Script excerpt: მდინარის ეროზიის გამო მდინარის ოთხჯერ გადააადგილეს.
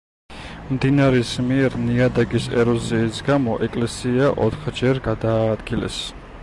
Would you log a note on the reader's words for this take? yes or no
yes